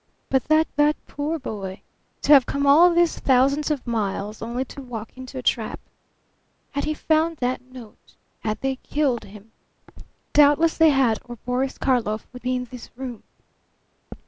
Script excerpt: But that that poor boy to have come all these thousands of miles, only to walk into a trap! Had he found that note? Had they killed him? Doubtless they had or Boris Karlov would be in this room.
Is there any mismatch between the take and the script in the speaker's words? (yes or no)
no